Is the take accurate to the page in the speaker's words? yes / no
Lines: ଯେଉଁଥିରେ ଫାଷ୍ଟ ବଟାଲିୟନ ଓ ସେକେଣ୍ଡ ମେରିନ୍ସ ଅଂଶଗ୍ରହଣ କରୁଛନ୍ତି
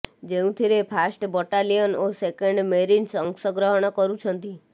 yes